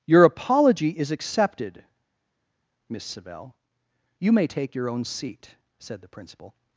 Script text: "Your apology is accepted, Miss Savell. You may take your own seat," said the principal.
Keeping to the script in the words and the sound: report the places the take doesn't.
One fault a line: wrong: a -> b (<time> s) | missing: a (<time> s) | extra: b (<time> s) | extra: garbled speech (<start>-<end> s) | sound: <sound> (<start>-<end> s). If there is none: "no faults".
no faults